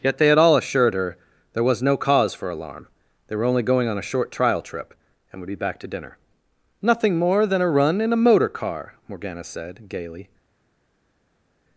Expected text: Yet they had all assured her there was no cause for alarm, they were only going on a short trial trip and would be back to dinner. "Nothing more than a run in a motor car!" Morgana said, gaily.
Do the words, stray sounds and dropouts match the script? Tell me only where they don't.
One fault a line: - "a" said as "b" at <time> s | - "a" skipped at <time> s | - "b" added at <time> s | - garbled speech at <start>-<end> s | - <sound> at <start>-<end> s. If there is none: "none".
none